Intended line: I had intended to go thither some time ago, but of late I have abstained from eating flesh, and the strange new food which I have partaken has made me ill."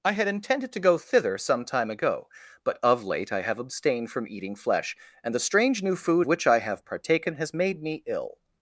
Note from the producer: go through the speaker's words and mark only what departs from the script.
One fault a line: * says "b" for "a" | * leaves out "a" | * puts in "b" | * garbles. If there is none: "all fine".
all fine